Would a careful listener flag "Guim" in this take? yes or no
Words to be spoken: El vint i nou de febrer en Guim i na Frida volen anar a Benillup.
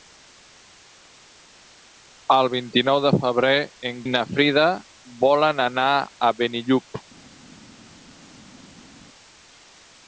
yes